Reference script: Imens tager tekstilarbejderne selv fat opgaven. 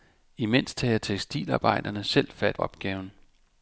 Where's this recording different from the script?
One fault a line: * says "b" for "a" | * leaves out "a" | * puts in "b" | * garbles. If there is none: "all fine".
all fine